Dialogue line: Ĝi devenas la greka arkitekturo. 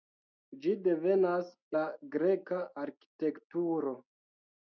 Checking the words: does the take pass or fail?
pass